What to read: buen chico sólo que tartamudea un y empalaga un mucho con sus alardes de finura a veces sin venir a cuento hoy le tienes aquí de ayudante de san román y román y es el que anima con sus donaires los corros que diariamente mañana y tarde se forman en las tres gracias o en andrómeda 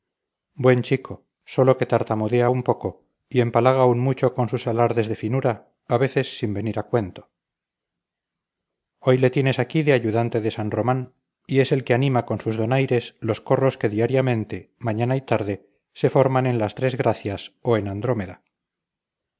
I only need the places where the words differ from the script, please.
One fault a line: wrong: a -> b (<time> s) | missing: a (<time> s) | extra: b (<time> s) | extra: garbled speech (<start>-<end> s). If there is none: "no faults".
extra: poco (2.6 s)
missing: román y (11.6 s)